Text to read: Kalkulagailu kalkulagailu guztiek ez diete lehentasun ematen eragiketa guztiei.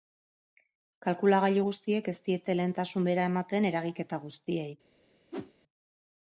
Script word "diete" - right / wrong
right